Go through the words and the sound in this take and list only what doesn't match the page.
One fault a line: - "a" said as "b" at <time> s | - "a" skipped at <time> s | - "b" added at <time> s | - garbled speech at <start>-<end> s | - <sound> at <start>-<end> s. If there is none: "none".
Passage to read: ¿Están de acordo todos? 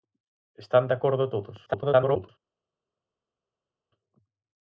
- garbled speech at 1.7-2.3 s